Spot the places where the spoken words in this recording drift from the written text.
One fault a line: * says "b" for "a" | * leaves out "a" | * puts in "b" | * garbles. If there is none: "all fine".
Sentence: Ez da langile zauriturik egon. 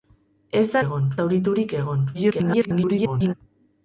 * says "egon" for "langile"
* garbles